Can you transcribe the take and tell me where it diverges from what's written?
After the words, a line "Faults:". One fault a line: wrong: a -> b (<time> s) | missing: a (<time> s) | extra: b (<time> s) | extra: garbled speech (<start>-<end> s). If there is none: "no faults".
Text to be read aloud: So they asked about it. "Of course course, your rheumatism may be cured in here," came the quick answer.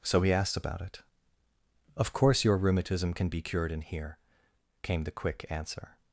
So he asked about it. "Of course, your rheumatism can be cured in here," came the quick answer.
Faults:
wrong: they -> he (0.2 s)
missing: course (2.4 s)
wrong: may -> can (3.1 s)